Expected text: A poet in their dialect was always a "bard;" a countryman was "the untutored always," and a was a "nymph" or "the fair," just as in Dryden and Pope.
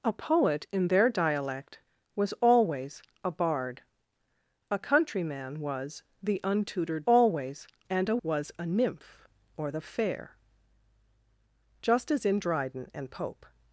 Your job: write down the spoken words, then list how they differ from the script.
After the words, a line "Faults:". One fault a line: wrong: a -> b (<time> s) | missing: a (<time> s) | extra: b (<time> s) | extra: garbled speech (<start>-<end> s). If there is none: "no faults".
A poet in their dialect was always a "bard;" a countryman was "the untutored always," and a was a "nymph" or "the fair," just as in Dryden and Pope.
Faults:
no faults